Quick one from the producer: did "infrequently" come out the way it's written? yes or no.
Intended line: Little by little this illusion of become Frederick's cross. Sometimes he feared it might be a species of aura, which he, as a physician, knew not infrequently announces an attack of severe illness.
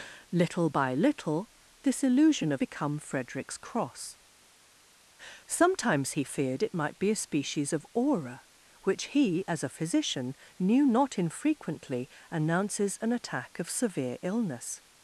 yes